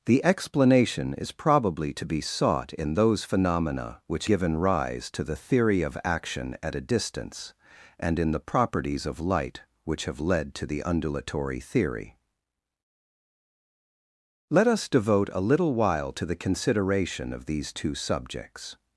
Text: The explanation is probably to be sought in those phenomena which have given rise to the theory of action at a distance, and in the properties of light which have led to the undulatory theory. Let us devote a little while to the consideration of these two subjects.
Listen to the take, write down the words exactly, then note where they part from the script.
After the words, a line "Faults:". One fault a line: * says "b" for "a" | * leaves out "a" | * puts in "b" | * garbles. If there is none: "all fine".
The explanation is probably to be sought in those phenomena which given rise to the theory of action at a distance, and in the properties of light which have led to the undulatory theory. Let us devote a little while to the consideration of these two subjects.
Faults:
* leaves out "have"